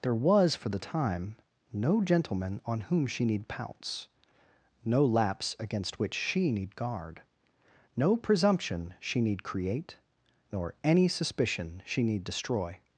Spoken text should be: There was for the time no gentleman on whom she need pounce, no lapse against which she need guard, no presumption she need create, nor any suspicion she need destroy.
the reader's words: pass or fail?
pass